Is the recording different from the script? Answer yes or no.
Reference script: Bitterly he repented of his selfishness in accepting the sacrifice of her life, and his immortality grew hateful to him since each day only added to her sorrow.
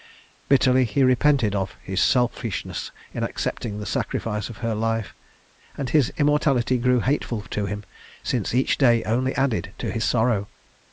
yes